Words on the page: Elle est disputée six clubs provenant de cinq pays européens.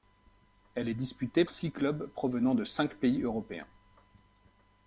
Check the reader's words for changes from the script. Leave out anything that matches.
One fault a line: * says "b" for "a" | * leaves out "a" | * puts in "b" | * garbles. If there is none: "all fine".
all fine